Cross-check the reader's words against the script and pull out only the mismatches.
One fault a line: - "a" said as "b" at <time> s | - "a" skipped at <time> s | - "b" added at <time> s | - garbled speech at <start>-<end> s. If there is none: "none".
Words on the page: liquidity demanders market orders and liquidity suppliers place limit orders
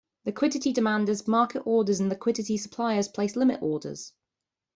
none